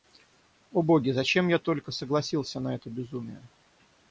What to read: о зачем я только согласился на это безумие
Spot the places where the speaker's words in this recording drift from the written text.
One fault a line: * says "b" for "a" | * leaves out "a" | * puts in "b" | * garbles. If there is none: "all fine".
* puts in "боги"